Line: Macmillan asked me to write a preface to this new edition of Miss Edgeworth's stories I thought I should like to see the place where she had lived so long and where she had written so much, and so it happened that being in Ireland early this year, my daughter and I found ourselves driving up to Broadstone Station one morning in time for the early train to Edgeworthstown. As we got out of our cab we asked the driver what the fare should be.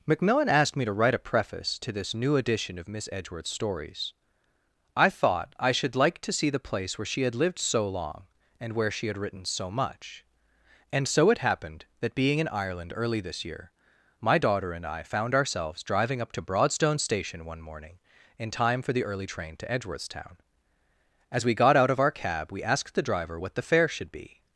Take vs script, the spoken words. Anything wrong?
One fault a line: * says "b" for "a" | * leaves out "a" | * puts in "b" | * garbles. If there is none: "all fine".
all fine